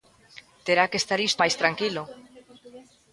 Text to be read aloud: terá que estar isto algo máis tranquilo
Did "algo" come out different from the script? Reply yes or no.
yes